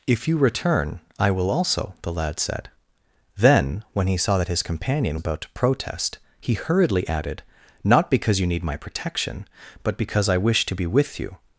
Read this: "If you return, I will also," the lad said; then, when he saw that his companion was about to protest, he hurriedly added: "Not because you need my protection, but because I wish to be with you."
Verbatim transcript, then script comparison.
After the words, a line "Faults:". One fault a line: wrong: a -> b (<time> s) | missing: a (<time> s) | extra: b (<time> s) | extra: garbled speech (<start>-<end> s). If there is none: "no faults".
"If you return, I will also," the lad said; then, when he saw that his companion about to protest, he hurriedly added: "Not because you need my protection, but because I wish to be with you."
Faults:
missing: was (5.2 s)